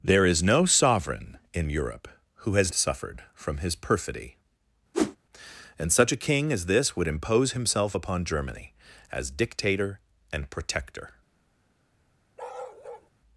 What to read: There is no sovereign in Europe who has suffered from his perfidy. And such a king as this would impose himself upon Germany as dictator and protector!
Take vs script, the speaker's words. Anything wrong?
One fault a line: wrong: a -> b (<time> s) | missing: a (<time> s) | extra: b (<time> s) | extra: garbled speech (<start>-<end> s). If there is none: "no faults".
no faults